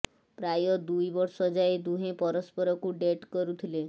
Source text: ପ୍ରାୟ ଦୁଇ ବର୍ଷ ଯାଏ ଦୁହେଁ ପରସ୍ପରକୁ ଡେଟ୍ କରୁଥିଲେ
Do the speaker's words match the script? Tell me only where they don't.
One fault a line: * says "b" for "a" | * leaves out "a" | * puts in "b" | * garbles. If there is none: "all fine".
all fine